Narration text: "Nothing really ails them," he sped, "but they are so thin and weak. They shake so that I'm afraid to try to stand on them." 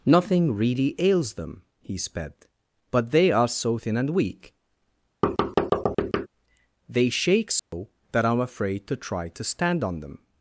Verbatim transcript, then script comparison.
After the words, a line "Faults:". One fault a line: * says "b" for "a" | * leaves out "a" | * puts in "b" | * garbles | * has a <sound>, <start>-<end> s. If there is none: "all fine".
"Nothing really ails them," he sped, "but they are so thin and weak. They shake so that I'm afraid to try to stand on them."
Faults:
* has a thud, 5.2-6.3 s
* has a dropout, 7.6-7.7 s